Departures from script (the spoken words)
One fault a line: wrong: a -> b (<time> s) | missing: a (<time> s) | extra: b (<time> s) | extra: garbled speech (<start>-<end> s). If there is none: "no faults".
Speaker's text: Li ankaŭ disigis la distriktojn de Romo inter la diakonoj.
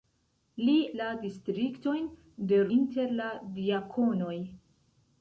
missing: ankaŭ disigis (0.8 s)
missing: Romo (2.6 s)